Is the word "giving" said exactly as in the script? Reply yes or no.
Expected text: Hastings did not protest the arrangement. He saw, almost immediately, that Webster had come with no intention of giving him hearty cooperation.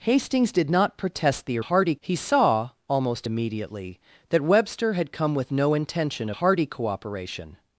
no